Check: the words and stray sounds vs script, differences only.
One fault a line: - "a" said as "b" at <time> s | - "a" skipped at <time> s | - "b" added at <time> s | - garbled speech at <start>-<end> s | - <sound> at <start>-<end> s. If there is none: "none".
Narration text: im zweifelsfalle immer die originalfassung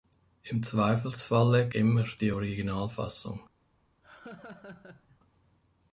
- laugh at 4.0-5.2 s